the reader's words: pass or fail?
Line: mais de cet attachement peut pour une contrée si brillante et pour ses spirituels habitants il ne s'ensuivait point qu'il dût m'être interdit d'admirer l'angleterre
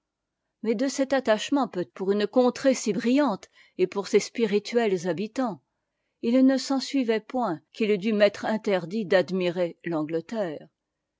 pass